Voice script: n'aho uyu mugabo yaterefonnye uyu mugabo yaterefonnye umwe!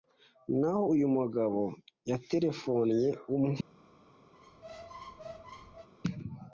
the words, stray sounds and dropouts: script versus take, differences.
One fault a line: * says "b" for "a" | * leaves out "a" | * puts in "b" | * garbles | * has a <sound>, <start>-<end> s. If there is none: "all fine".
* leaves out "uyu mugabo yaterefonnye"
* has a squeak, 4.3-5.9 s